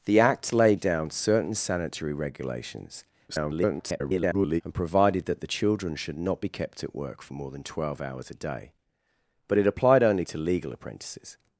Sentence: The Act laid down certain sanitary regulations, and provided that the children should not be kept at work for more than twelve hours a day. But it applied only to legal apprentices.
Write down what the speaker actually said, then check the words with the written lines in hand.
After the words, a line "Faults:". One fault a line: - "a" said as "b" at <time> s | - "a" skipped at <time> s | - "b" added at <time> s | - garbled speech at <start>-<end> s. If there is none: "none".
The Act laid down certain sanitary regulations, [garbled] and provided that the children should not be kept at work for more than twelve hours a day. But it applied only to legal apprentices.
Faults:
- garbled speech at 3.3-4.6 s